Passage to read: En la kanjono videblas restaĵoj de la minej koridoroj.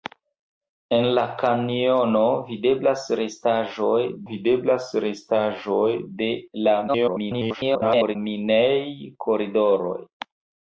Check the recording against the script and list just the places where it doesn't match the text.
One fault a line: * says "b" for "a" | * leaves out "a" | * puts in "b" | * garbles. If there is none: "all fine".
* puts in "videblas restaĵoj"
* garbles